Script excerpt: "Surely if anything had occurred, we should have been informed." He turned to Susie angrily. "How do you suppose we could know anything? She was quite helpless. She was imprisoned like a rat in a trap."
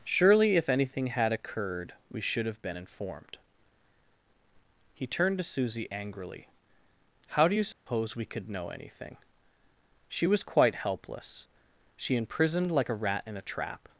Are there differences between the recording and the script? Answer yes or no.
yes